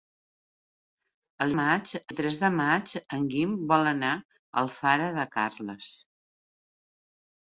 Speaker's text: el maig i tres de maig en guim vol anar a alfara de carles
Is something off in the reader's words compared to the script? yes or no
no